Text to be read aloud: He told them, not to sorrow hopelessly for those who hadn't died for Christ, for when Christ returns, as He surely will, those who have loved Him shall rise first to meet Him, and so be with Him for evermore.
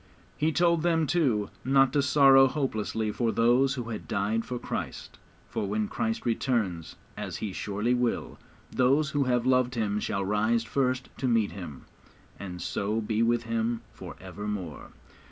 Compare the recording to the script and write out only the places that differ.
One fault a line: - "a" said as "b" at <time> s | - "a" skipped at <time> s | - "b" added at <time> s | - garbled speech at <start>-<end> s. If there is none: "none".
- "too" added at 1.1 s
- "hadn't" said as "had" at 3.9 s